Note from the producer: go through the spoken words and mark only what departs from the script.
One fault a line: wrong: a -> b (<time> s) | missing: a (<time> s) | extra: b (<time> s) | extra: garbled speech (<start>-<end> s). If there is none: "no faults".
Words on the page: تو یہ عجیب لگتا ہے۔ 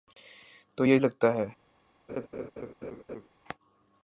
missing: عجیب (1.0 s)